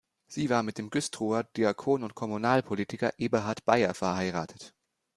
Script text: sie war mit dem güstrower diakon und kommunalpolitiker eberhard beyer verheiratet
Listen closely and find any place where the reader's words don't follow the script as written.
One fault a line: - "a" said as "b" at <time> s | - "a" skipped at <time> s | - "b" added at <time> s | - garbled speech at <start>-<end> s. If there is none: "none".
none